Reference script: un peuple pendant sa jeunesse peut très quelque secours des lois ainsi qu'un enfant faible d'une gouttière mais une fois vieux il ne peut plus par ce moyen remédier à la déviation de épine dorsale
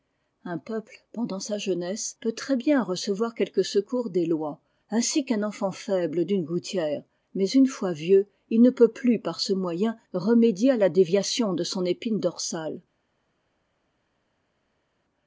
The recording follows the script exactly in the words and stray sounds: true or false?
false